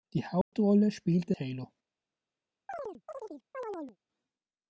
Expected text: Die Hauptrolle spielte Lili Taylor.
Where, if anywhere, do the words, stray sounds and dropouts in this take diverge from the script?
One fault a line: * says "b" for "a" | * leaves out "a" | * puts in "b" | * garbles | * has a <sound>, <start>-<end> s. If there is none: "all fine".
* has a dropout, 0.4-0.5 s
* leaves out "Lili"
* has a chirp, 2.7-4.0 s